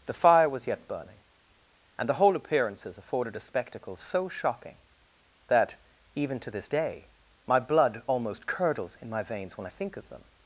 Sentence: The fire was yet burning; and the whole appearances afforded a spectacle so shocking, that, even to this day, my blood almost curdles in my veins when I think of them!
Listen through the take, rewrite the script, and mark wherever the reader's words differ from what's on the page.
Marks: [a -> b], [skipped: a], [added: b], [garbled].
The fire was yet burning; and the whole appearances afforded a spectacle so shocking, that, even to this day, my blood almost curdles in my veins when I think of them!